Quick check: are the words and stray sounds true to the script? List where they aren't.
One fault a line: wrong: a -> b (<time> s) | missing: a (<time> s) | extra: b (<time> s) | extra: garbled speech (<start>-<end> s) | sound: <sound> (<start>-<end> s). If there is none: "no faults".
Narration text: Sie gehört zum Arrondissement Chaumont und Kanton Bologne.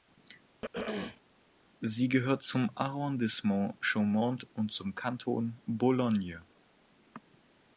sound: throat clearing (0.6-1.2 s)
extra: zum (4.7 s)